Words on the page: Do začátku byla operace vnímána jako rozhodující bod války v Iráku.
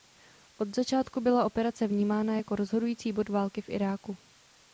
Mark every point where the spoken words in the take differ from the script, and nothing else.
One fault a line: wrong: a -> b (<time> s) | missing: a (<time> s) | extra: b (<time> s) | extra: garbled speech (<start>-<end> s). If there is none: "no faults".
wrong: Do -> Od (0.6 s)